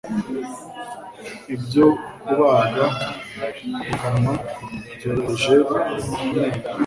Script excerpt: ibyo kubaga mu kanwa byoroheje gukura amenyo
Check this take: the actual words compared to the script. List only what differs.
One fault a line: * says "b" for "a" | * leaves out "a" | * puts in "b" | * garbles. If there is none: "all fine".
* leaves out "gukura"